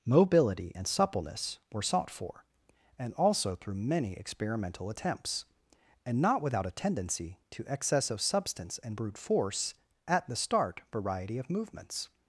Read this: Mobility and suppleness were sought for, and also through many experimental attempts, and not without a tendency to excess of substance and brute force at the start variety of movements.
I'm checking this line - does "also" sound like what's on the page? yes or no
yes